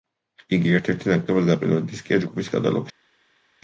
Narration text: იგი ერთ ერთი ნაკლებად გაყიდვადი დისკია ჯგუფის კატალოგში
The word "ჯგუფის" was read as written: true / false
true